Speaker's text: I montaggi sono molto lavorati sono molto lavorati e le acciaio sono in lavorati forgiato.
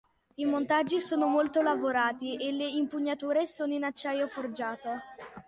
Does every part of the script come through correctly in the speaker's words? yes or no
no